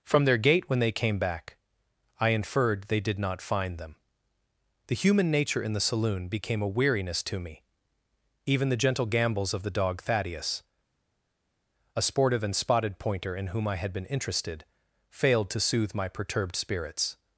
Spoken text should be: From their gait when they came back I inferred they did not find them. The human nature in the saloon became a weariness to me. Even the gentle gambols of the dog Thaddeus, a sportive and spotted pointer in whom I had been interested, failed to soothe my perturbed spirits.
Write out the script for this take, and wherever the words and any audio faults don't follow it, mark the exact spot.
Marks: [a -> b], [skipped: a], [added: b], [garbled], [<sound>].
From their gait when they came back I inferred they did not find them. The human nature in the saloon became a weariness to me. Even the gentle gambols of the dog Thaddeus, a sportive and spotted pointer in whom I had been interested, failed to soothe my perturbed spirits.